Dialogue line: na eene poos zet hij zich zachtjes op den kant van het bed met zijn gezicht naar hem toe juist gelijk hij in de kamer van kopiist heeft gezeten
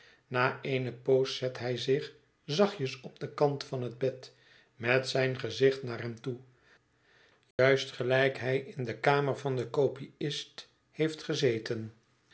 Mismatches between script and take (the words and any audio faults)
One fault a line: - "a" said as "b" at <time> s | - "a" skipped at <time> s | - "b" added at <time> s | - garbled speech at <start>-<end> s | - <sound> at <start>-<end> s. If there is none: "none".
- dropout at 7.5-7.6 s
- "den" added at 9.6 s